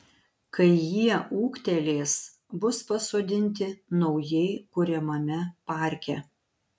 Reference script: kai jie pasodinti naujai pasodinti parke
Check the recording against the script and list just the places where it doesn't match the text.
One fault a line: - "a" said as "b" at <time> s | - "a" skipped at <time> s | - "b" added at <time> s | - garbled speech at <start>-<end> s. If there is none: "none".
- "ūgtelės bus" added at 1.4 s
- "pasodinti" said as "kuriamame" at 4.8 s